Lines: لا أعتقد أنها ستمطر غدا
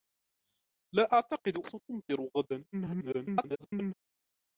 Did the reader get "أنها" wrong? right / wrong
wrong